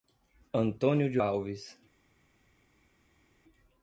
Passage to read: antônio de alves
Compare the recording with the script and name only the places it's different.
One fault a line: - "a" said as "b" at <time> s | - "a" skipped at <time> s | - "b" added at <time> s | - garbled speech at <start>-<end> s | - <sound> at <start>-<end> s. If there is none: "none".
none